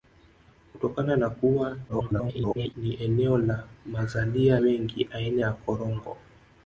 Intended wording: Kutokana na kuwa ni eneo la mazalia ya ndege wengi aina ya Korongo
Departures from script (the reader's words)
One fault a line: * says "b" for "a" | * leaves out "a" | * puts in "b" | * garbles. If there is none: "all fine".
* garbles
* leaves out "ya ndege"